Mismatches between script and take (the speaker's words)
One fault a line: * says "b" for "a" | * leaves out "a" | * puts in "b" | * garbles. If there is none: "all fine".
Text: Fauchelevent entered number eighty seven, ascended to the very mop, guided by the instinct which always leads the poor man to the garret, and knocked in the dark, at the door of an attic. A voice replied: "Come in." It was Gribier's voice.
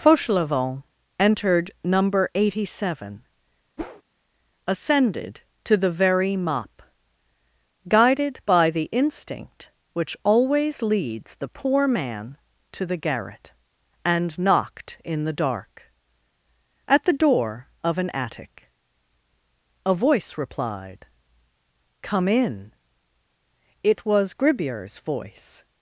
all fine